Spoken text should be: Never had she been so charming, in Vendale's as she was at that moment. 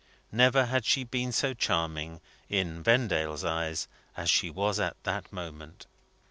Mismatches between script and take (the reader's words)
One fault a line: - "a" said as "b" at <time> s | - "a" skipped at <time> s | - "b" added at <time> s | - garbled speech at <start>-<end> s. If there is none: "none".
- "eyes" added at 3.4 s